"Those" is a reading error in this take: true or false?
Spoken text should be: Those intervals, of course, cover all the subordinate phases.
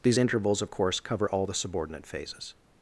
true